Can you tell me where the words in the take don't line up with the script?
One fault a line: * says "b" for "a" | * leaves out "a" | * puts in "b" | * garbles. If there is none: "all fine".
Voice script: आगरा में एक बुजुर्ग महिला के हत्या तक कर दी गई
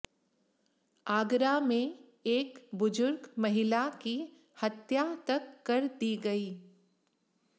* says "की" for "के"